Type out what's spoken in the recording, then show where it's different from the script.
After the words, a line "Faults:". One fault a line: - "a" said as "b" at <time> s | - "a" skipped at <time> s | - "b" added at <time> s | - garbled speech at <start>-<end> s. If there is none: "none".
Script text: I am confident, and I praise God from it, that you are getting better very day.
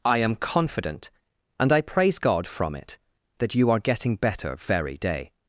I am confident, and I praise God from it, that you are getting better very day.
Faults:
none